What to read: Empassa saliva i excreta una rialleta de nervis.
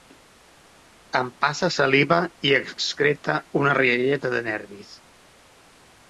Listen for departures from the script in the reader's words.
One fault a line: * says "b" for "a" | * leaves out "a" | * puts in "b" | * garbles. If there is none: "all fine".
all fine